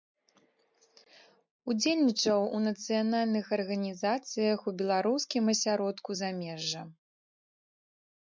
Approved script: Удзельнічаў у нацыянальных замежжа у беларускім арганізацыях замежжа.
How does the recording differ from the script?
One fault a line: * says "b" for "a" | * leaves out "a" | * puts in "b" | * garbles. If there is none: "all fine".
* says "арганізацыях" for "замежжа"
* says "асяродку" for "арганізацыях"